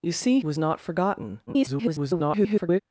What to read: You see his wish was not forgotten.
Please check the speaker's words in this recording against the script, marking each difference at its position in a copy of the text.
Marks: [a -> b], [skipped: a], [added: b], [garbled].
You see [skipped: his wish] was not forgotten. [garbled]